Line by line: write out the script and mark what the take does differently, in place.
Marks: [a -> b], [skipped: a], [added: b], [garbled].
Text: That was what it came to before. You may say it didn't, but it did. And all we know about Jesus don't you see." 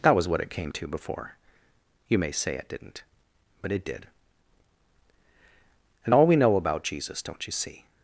That was what it came to before. You may say it didn't, but it did. And all we know about Jesus don't you see."